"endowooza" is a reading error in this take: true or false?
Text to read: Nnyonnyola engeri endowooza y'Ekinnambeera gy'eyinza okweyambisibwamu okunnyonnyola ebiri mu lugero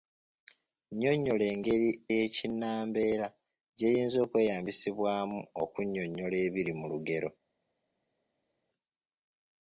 true